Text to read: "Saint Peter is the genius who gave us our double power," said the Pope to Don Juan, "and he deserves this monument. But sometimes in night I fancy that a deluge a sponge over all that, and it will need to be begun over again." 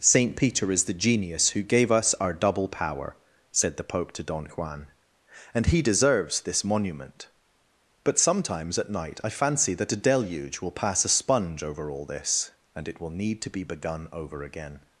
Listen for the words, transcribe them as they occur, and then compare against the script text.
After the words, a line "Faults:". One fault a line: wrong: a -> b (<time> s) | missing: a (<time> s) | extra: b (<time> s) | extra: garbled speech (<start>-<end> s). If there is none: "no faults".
"Saint Peter is the genius who gave us our double power," said the Pope to Don Juan, "and he deserves this monument. But sometimes at night I fancy that a deluge will pass a sponge over all this, and it will need to be begun over again."
Faults:
wrong: in -> at (8.8 s)
extra: will pass (10.6 s)
wrong: that -> this (12.1 s)